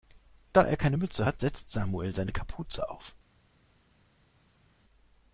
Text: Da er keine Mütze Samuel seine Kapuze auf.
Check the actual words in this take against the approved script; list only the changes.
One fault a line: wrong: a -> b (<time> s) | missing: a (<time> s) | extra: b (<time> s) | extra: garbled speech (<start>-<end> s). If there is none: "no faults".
extra: hat setzt (1.2 s)